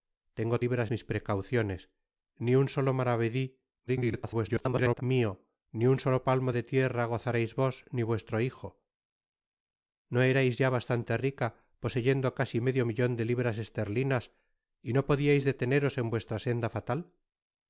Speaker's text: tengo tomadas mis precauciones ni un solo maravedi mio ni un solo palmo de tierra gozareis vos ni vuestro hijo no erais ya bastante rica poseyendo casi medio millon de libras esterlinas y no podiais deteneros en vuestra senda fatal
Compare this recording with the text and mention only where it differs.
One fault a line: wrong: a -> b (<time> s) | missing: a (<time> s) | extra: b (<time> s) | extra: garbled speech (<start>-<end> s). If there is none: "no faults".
wrong: tomadas -> libras (0.6 s)
extra: garbled speech (3.9-5.0 s)